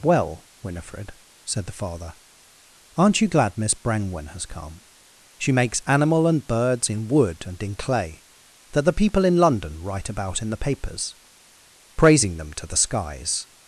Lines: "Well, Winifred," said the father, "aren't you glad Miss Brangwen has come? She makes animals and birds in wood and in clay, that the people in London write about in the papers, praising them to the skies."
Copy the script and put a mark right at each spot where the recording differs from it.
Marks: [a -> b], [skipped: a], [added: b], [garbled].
"Well, Winifred," said the father, "aren't you glad Miss Brangwen has come? She makes [animals -> animal] and birds in wood and in clay, that the people in London write about in the papers, praising them to the skies."